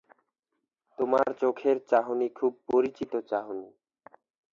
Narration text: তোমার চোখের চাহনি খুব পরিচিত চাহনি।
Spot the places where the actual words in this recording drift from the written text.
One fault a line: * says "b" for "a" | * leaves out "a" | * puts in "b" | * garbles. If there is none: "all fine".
all fine